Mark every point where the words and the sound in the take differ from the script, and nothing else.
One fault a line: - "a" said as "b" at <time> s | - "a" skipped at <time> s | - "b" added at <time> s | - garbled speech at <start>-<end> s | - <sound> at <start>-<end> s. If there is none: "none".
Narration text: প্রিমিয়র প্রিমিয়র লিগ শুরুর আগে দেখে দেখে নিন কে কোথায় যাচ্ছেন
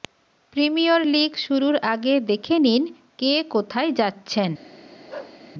- "প্রিমিয়র" skipped at 1.0 s
- "দেখে" skipped at 2.6 s
- bark at 5.1-5.4 s